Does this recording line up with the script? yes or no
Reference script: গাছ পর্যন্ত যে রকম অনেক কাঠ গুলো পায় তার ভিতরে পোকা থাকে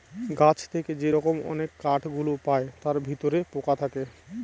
no